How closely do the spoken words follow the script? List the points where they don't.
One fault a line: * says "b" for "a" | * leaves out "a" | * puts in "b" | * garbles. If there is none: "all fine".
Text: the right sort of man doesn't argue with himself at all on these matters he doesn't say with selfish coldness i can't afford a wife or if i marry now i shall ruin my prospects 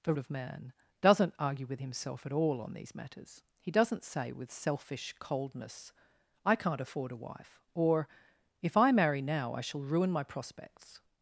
* leaves out "right sort"